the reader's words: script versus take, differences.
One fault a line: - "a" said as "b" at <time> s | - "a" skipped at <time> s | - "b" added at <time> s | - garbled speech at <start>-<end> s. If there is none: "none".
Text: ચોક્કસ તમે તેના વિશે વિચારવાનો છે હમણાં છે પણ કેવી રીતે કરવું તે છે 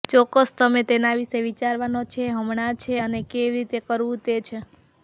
- "પણ" said as "અને" at 3.0 s